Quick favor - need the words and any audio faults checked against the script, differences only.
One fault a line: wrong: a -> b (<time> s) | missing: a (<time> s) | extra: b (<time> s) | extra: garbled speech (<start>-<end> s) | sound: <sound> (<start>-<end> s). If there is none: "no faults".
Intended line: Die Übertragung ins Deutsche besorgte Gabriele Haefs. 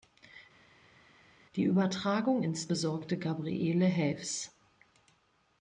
missing: Deutsche (2.7 s)